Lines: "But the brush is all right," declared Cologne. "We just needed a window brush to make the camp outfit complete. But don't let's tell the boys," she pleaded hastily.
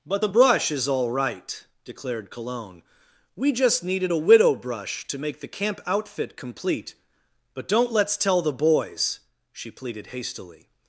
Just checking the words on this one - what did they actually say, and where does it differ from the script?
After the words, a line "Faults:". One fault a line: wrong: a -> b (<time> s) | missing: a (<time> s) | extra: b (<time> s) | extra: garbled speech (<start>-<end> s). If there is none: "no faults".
"But the brush is all right," declared Cologne. "We just needed a widow brush to make the camp outfit complete. But don't let's tell the boys," she pleaded hastily.
Faults:
wrong: window -> widow (4.2 s)